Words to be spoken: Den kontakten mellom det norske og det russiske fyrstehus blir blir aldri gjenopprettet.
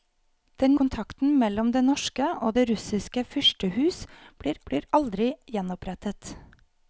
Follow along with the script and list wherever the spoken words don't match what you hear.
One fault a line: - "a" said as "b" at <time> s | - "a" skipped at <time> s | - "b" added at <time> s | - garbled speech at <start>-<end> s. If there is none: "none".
none